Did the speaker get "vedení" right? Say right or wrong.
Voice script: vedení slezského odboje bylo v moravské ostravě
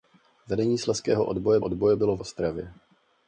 right